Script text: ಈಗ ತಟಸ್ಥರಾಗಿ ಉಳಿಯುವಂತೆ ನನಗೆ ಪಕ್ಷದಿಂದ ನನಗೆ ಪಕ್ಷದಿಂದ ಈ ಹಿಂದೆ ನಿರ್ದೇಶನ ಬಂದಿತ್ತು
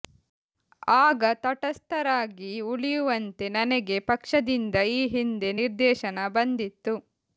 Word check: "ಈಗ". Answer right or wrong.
wrong